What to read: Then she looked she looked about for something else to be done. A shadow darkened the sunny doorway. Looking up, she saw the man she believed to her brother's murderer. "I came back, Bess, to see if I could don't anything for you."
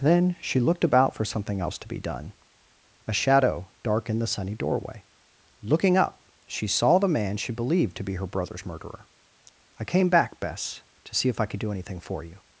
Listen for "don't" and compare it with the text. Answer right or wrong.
wrong